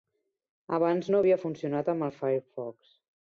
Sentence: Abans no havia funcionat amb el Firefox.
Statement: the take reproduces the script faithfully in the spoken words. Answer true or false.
true